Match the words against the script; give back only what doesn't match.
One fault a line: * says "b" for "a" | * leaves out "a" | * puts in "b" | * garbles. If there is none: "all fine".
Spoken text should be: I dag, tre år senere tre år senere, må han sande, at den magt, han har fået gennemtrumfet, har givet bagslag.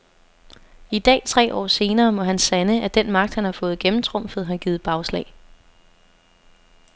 * leaves out "tre år senere"